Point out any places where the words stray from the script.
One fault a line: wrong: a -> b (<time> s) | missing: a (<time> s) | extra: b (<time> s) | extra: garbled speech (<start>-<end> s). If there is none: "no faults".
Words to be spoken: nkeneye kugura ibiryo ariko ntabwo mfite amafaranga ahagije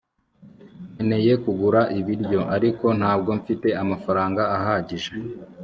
no faults